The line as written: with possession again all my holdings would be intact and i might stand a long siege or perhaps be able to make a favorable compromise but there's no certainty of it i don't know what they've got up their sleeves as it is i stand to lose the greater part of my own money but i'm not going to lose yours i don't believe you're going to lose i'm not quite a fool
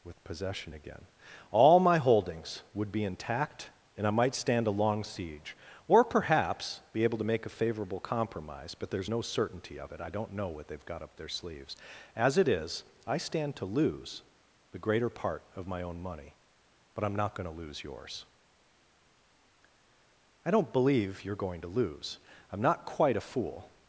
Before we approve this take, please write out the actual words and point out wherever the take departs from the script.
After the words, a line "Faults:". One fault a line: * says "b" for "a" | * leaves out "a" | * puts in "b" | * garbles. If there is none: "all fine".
with possession again all my holdings would be intact and i might stand a long siege or perhaps be able to make a favorable compromise but there's no certainty of it i don't know what they've got up their sleeves as it is i stand to lose the greater part of my own money but i'm not going to lose yours i don't believe you're going to lose i'm not quite a fool
Faults:
all fine